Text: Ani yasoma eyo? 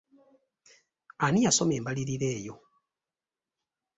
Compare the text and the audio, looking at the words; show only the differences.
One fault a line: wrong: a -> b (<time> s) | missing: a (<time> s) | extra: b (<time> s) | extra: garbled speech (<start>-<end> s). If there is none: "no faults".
extra: embalirira (1.8 s)